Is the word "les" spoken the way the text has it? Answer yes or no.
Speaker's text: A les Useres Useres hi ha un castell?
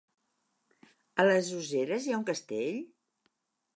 yes